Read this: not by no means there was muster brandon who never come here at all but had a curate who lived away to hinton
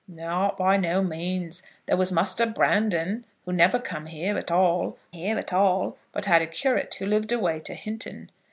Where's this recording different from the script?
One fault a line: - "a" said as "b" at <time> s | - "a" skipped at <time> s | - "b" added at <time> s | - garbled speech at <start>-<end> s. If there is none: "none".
- "here at all" added at 5.1 s